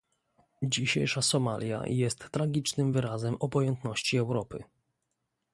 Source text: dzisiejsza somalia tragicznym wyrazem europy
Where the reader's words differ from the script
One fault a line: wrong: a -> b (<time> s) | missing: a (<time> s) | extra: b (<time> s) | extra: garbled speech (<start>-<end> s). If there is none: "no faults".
extra: jest (1.9 s)
extra: obojętności (3.4 s)